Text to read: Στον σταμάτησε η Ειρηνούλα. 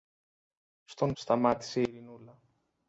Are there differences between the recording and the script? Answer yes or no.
no